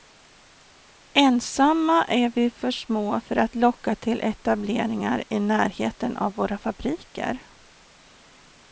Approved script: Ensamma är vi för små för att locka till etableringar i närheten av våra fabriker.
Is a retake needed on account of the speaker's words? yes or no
no